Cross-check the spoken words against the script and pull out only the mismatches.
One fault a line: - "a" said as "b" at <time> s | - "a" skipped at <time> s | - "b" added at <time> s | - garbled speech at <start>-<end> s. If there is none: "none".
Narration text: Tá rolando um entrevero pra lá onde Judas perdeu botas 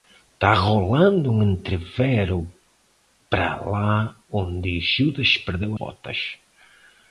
none